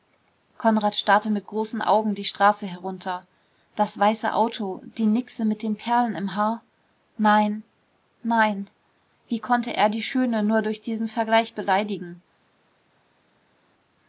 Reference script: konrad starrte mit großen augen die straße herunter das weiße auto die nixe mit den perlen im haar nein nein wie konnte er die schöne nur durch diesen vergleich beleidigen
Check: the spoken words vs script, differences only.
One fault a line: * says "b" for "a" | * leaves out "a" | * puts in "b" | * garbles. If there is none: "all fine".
all fine